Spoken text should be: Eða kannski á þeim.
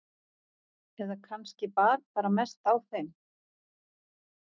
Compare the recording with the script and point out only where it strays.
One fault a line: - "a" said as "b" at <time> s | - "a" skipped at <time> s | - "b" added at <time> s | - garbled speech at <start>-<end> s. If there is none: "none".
- "bar bara mest" added at 1.8 s